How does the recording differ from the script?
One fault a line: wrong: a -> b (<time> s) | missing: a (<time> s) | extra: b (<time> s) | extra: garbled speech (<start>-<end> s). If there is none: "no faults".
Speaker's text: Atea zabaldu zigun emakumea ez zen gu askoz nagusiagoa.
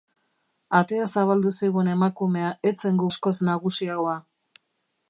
no faults